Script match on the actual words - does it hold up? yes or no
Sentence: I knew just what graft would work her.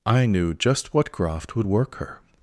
yes